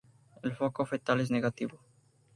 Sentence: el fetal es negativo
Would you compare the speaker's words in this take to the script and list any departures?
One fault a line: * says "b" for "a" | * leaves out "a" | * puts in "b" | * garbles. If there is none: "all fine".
* puts in "foco"